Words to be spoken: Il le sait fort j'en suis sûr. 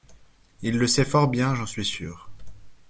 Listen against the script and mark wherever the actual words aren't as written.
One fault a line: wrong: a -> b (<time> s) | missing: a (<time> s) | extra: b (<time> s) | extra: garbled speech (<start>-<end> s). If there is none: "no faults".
extra: bien (1.3 s)